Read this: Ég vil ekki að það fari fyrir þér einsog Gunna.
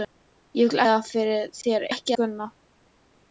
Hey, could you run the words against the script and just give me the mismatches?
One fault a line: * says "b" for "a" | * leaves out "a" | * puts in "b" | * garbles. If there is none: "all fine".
* leaves out "ekki"
* leaves out "fari"
* says "ekki" for "einsog"